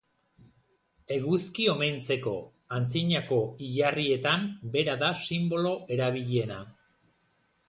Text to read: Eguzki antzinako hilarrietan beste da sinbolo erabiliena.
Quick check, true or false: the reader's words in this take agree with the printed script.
false